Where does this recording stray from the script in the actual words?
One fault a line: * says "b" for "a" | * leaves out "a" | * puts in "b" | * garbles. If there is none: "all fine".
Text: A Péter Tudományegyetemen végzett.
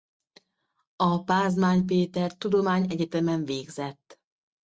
* puts in "Pázmány"